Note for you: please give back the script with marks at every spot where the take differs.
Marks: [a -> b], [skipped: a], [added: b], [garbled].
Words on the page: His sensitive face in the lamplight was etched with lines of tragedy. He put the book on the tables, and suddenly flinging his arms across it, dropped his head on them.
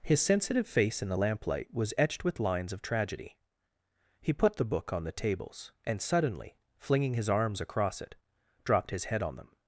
His sensitive face in the lamplight was etched with lines of tragedy. He put the book on the tables, and suddenly flinging his arms across it, dropped his head on them.